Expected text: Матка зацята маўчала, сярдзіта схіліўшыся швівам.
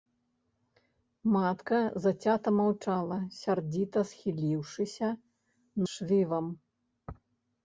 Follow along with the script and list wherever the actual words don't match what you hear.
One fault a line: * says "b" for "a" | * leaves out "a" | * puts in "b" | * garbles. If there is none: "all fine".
all fine